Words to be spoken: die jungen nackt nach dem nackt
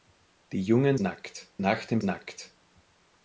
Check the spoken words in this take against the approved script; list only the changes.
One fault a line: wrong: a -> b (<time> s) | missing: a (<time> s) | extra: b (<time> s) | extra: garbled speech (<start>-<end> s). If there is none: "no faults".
no faults